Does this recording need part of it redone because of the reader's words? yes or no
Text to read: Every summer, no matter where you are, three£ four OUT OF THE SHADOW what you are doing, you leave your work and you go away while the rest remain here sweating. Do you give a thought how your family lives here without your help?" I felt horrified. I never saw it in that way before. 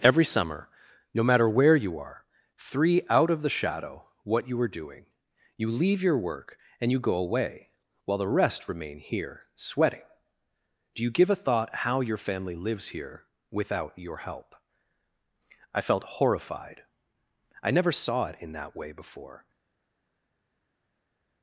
yes